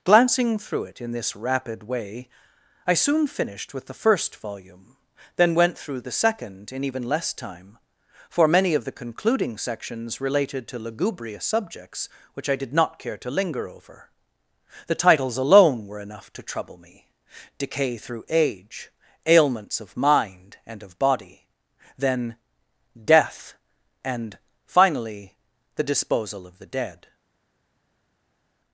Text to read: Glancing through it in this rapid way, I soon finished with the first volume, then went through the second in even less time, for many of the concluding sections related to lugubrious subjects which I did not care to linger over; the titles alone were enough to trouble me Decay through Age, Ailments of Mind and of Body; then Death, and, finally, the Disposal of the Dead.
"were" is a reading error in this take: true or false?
false